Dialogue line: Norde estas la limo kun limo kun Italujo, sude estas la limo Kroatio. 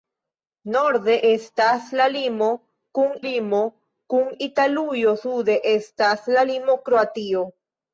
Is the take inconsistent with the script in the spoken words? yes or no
no